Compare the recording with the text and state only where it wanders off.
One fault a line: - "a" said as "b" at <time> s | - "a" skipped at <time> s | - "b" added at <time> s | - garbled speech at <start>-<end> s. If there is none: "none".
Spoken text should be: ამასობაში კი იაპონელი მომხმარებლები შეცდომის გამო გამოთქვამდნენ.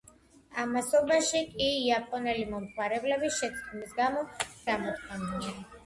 none